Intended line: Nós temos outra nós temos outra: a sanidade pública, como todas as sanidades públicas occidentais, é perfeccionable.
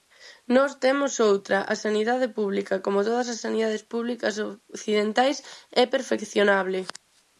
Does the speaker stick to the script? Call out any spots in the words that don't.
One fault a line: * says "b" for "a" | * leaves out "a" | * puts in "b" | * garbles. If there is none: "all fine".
* leaves out "nós temos outra"